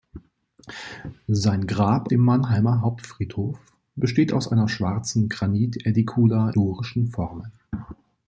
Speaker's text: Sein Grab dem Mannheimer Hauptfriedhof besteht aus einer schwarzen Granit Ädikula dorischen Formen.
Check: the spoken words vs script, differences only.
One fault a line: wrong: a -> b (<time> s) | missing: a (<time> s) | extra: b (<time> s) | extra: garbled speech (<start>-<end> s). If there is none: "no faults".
no faults